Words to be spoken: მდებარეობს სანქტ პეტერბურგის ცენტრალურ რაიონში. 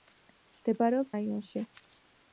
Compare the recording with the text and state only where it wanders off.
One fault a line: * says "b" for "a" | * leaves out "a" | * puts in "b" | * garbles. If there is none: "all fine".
* leaves out "სანქტ პეტერბურგის ცენტრალურ"